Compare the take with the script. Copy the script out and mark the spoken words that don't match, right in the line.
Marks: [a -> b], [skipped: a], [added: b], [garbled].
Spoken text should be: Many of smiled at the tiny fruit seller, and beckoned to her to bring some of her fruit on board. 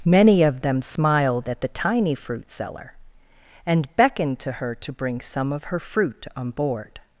Many of [added: them] smiled at the tiny fruit seller, and beckoned to her to bring some of her fruit on board.